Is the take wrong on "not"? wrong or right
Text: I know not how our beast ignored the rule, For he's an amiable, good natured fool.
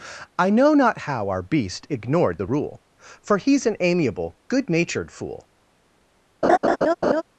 right